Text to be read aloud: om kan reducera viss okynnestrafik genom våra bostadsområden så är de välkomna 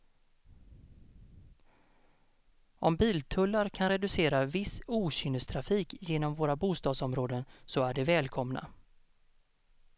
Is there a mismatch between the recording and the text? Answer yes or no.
yes